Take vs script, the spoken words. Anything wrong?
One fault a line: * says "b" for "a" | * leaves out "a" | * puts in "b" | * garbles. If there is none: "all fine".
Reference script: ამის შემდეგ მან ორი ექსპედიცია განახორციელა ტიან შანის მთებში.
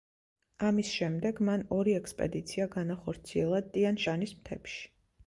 all fine